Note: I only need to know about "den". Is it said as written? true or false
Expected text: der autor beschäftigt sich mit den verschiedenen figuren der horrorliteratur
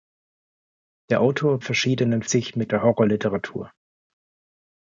false